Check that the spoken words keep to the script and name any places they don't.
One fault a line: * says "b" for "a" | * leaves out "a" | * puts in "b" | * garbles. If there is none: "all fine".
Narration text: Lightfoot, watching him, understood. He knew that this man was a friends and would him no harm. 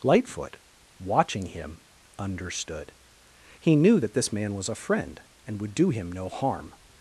* says "friend" for "friends"
* puts in "do"